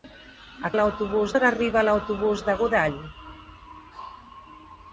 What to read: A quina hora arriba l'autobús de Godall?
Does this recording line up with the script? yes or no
no